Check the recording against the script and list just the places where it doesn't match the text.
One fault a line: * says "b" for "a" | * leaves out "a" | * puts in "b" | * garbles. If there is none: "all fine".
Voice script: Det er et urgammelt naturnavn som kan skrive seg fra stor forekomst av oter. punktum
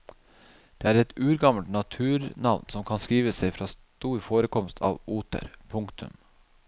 all fine